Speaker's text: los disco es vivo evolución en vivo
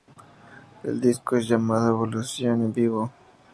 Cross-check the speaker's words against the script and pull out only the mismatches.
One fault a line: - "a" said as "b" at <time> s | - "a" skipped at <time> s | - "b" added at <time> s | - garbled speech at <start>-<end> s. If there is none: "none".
- "los" said as "el" at 0.8 s
- "vivo" said as "llamado" at 1.5 s